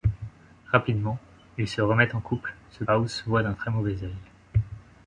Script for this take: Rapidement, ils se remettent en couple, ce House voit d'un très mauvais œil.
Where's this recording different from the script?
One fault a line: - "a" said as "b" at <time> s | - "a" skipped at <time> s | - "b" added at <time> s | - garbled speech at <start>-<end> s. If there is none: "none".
none